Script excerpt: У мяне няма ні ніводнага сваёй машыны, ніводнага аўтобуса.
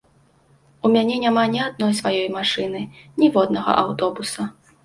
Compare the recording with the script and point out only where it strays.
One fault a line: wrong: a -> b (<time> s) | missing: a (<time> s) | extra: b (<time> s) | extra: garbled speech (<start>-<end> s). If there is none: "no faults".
wrong: ніводнага -> адной (1.7 s)